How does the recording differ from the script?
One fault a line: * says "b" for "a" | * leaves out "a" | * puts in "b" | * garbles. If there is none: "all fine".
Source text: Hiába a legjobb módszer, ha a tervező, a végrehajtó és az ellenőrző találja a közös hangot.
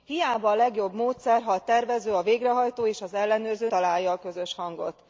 all fine